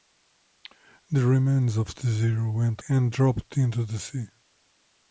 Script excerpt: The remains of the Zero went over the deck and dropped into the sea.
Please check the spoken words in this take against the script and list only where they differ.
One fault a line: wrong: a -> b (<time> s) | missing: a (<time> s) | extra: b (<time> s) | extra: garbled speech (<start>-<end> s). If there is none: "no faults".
missing: over the deck (2.8 s)